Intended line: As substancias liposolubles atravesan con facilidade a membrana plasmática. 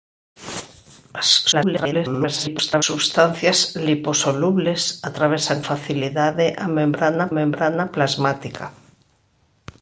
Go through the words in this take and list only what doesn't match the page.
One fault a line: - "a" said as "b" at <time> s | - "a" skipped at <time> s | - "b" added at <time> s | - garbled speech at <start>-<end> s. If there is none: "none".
- garbled speech at 1.5-2.8 s
- "con" skipped at 5.6 s
- "membrana" added at 7.4 s